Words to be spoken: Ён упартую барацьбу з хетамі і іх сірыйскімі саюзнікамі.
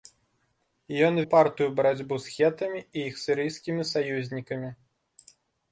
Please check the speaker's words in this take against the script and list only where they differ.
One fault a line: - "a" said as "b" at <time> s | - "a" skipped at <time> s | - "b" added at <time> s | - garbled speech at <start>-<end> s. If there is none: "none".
none